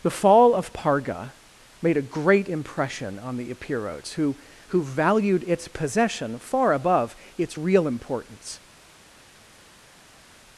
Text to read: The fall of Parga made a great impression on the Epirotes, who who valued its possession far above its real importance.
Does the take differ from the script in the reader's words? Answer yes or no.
no